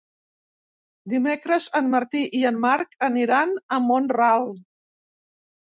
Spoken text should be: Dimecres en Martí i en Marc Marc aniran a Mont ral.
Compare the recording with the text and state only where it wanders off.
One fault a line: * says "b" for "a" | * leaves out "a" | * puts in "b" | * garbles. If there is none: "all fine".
* leaves out "Marc"